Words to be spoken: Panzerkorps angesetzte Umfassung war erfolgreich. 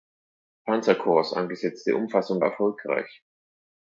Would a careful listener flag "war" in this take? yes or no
yes